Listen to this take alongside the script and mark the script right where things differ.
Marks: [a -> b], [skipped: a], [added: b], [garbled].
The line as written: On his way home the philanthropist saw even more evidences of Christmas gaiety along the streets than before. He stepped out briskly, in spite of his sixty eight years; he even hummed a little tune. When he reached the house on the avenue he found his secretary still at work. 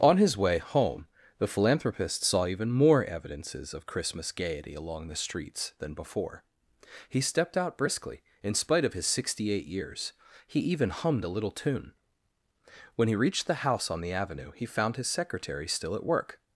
On his way home the philanthropist saw even more evidences of Christmas gaiety along the streets than before. He stepped out briskly, in spite of his sixty eight years; he even hummed a little tune. When he reached the house on the avenue he found his secretary still at work.